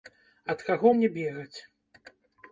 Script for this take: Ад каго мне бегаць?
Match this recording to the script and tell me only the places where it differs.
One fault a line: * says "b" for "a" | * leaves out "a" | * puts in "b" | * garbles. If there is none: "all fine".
all fine